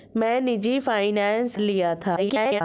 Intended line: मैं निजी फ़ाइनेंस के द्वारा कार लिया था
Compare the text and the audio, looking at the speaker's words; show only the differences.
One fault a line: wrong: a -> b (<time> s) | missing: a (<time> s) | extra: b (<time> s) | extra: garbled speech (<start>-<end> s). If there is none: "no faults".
missing: के द्वारा कार (1.6 s)
extra: garbled speech (2.2-2.6 s)